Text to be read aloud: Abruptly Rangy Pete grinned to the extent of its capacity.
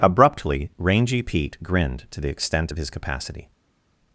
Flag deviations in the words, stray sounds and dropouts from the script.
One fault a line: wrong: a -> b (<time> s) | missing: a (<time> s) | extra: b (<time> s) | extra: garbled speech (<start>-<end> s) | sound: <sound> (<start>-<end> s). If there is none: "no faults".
wrong: its -> his (2.8 s)